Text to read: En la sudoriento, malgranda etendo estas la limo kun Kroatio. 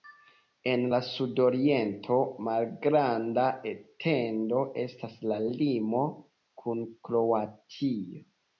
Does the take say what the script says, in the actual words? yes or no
yes